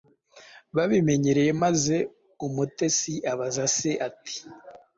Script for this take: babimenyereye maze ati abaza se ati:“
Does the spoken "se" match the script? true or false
true